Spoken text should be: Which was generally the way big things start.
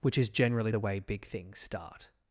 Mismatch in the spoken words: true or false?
true